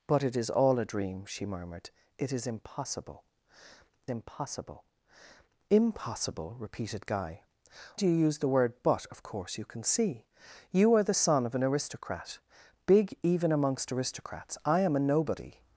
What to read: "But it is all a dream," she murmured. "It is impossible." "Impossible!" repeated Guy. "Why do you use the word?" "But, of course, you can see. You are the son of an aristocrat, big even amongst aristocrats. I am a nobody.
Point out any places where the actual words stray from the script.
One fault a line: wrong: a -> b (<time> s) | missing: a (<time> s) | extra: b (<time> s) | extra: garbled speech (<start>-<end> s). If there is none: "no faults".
extra: Impossible (5.7 s)
missing: Why (7.4 s)